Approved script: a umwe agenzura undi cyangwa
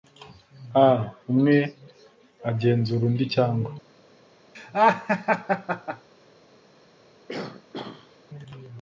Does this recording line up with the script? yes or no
yes